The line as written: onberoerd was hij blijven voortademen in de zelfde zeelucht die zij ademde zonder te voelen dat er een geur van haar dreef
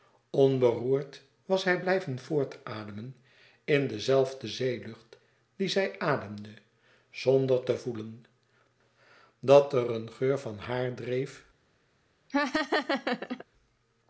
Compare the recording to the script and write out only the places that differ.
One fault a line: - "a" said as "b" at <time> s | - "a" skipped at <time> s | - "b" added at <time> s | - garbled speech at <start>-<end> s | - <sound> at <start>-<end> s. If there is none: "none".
- laugh at 12.3-13.4 s